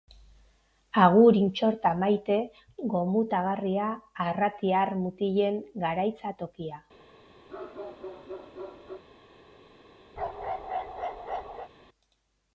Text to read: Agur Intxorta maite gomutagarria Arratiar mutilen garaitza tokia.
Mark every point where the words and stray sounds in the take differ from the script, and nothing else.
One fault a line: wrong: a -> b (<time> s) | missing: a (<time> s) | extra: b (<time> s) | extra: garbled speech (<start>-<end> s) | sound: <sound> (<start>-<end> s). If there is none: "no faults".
sound: bark (7.5-9.0 s)
sound: bark (10.2-11.7 s)